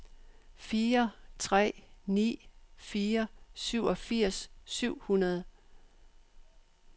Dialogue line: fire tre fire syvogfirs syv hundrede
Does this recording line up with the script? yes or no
no